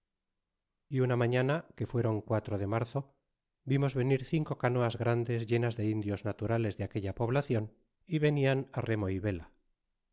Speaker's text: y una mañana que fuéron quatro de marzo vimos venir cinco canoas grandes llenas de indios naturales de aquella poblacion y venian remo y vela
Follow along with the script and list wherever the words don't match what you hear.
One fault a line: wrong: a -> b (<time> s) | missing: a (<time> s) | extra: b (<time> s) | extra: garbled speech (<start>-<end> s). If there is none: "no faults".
no faults